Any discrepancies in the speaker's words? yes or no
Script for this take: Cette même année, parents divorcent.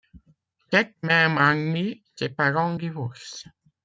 yes